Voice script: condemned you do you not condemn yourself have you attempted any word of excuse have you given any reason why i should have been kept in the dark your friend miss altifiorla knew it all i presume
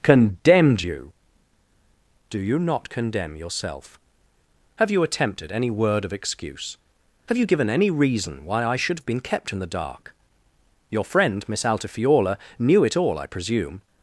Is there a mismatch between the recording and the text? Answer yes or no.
no